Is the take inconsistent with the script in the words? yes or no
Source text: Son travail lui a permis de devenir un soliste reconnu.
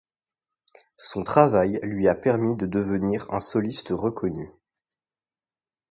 no